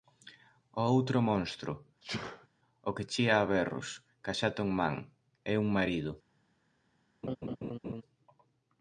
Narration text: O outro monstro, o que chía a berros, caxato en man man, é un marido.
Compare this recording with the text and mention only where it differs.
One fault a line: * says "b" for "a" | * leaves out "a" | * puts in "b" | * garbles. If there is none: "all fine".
* leaves out "man"